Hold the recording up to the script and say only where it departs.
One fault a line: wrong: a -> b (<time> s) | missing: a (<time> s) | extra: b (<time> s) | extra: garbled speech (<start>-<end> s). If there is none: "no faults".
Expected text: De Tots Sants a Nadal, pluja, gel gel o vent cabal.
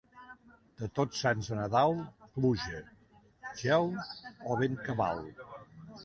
missing: gel (3.9 s)